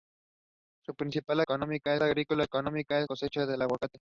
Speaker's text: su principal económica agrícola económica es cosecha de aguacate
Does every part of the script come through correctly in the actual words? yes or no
yes